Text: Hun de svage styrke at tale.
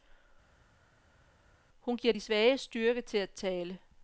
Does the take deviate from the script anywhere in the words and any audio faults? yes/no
yes